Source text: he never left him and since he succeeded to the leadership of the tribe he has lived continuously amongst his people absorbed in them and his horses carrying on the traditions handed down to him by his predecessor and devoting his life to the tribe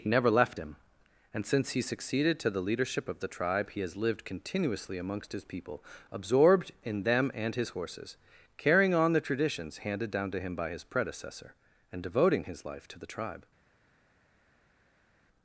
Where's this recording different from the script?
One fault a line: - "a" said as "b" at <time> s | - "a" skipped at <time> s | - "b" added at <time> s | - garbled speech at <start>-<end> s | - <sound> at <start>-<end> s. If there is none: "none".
none